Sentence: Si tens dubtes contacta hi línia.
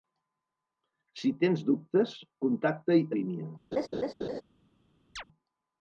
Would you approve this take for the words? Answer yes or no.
yes